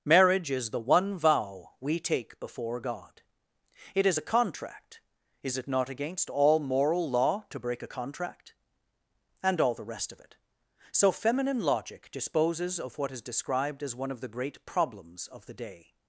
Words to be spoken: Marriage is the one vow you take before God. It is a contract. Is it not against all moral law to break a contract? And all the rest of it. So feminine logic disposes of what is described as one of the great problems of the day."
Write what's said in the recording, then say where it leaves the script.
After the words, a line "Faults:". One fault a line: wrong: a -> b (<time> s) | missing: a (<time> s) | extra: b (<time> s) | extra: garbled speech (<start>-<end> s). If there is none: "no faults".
Marriage is the one vow we take before God. It is a contract. Is it not against all moral law to break a contract? And all the rest of it. So feminine logic disposes of what is described as one of the great problems of the day."
Faults:
wrong: you -> we (1.8 s)